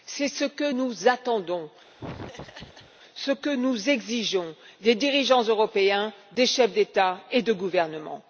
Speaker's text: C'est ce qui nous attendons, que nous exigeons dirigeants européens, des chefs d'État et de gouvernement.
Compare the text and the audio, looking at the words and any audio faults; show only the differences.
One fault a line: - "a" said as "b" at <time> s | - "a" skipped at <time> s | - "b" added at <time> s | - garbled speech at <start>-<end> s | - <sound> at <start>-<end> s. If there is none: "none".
- "qui" said as "que" at 0.5 s
- laugh at 2.0-2.9 s
- "ce" added at 3.1 s
- "des" added at 4.8 s